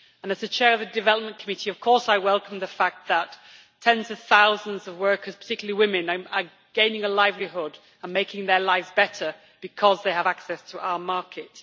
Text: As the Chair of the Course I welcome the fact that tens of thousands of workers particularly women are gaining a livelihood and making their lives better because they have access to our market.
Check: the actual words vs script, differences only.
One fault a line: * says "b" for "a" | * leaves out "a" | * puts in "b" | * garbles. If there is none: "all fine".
* puts in "Development Committee of"